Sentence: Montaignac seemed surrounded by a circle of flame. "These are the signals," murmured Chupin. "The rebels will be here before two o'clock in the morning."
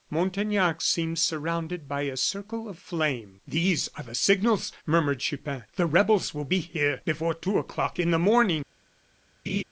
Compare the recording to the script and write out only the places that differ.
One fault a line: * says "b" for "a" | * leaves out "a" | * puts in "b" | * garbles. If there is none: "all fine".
all fine